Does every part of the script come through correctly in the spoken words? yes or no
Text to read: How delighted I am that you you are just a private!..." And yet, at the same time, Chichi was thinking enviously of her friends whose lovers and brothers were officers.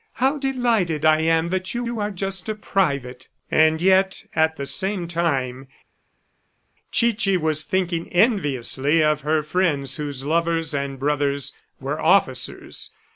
yes